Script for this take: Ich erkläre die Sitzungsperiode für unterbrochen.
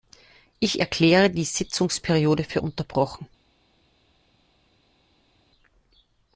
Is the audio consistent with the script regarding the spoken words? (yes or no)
yes